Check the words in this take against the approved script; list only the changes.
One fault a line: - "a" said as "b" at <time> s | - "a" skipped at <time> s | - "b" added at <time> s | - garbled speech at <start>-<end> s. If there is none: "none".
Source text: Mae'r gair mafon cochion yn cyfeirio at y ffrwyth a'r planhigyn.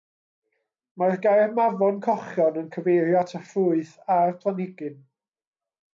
none